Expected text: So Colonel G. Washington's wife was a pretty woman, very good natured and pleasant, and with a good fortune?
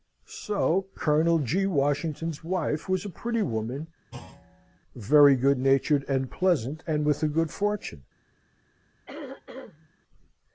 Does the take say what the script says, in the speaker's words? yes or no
yes